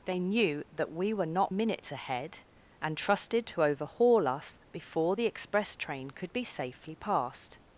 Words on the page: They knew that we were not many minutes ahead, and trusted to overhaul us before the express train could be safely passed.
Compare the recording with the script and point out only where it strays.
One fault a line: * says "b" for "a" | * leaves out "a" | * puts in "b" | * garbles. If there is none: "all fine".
* leaves out "many"